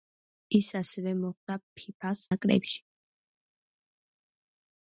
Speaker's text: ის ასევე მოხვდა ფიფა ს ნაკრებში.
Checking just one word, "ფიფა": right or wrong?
right